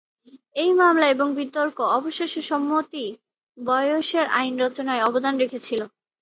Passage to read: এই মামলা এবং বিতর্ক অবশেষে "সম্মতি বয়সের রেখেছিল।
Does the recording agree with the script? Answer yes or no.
no